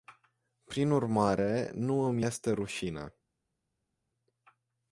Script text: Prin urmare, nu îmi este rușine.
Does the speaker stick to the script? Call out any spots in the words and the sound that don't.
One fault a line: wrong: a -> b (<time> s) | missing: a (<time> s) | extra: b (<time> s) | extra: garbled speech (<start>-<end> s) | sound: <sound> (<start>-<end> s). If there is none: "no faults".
no faults